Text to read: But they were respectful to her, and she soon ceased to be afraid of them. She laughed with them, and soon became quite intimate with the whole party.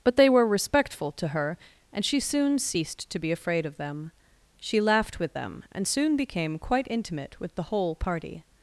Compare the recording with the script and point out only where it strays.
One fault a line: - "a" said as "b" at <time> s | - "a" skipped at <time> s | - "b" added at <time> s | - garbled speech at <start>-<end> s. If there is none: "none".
none